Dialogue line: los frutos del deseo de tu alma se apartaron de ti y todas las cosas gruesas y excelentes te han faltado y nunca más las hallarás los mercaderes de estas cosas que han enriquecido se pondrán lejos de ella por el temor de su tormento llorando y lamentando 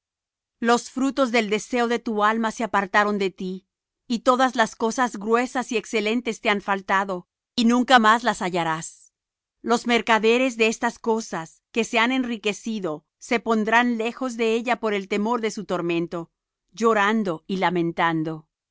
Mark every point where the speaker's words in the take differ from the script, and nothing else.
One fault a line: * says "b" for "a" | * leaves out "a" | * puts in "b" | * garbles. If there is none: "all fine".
* puts in "se"